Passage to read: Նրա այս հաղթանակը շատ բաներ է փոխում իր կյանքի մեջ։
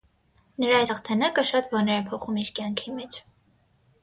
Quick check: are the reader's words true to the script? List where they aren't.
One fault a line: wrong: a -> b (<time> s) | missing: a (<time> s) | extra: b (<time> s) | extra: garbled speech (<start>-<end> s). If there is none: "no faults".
no faults